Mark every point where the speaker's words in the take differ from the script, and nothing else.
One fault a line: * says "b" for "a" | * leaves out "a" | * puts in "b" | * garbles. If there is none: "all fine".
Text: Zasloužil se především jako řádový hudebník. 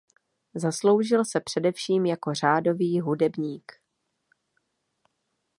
all fine